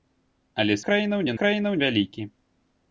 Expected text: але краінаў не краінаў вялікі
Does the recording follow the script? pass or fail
pass